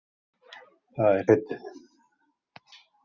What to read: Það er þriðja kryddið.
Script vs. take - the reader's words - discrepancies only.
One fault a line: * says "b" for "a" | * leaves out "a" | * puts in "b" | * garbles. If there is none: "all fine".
* leaves out "þriðja"